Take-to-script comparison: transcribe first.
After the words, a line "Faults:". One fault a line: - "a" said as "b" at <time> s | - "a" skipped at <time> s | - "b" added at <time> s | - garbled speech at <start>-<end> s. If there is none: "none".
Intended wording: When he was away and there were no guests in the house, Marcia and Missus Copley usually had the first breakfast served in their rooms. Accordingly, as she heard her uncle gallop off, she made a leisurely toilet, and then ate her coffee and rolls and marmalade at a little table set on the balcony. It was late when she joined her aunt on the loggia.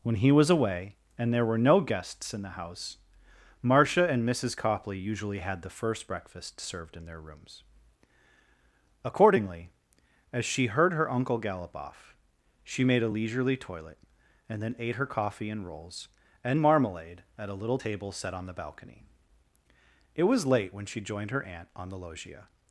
When he was away and there were no guests in the house, Marcia and Missus Copley usually had the first breakfast served in their rooms. Accordingly, as she heard her uncle gallop off, she made a leisurely toilet, and then ate her coffee and rolls and marmalade at a little table set on the balcony. It was late when she joined her aunt on the loggia.
Faults:
none